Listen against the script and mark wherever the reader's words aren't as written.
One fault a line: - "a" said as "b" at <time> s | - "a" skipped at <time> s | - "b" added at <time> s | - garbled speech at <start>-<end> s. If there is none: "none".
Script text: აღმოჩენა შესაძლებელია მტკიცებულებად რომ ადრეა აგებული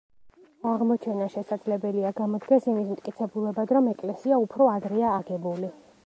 - "გამოდგეს იმის" added at 2.2 s
- "ეკლესია უფრო" added at 3.9 s